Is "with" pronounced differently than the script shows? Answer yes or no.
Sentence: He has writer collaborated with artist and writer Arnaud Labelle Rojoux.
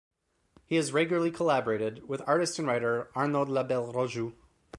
no